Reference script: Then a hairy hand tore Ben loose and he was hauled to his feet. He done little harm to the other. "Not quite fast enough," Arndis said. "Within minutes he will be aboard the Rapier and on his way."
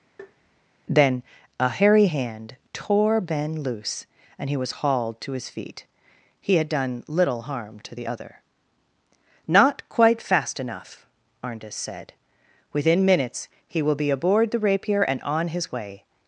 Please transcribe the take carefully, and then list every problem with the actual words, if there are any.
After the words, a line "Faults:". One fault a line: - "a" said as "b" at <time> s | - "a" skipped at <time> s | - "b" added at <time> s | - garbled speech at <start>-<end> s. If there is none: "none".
Then a hairy hand tore Ben loose and he was hauled to his feet. He had done little harm to the other. "Not quite fast enough," Arndis said. "Within minutes he will be aboard the Rapier and on his way."
Faults:
- "had" added at 6.5 s